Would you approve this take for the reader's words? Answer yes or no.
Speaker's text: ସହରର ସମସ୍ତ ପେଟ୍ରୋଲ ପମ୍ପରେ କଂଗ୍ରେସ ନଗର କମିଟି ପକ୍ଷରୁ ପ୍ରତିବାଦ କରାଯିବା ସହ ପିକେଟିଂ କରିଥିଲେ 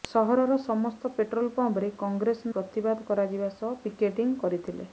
no